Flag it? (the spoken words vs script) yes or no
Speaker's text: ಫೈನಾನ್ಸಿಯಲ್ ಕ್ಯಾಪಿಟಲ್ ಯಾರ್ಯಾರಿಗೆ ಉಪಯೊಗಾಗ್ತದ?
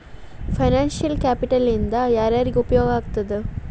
yes